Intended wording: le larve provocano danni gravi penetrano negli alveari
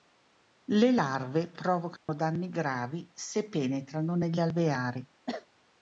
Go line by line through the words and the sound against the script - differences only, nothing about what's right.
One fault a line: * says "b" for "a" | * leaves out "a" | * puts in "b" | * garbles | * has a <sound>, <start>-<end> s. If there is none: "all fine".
* has a dropout, 2.0-2.1 s
* puts in "se"
* has a cough, 5.3-5.5 s